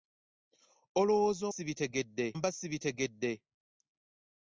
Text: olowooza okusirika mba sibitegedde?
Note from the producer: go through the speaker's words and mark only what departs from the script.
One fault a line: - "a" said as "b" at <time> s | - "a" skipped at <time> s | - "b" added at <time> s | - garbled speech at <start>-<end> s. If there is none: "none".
- "okusirika" said as "sibitegedde" at 1.5 s